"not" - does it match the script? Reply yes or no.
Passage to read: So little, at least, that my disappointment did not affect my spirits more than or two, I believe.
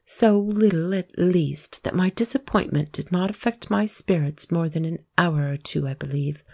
yes